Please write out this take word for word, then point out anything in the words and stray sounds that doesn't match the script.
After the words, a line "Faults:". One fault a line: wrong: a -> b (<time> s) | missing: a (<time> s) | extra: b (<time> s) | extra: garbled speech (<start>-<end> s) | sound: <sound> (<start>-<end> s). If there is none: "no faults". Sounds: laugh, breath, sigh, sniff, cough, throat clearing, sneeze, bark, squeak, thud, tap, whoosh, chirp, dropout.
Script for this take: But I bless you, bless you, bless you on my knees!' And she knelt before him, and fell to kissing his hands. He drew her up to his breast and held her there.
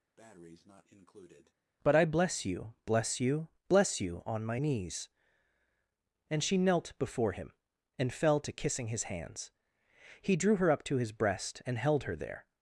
But I bless you, bless you, bless you on my knees!' And she knelt before him, and fell to kissing his hands. He drew her up to his breast and held her there.
Faults:
sound: breath (0.2-1.5 s)